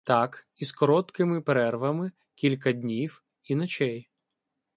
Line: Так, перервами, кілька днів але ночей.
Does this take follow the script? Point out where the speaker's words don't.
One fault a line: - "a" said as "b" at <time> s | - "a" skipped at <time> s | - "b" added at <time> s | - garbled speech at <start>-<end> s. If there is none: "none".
- "із короткими" added at 0.6 s
- "але" said as "і" at 3.4 s